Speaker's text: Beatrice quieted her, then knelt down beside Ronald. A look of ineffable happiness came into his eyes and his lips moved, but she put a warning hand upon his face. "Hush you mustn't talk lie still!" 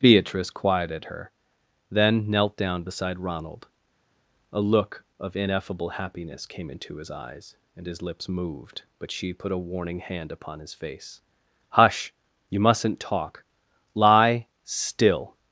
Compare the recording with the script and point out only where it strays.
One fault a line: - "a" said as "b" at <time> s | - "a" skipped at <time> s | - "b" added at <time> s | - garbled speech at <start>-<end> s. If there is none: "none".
none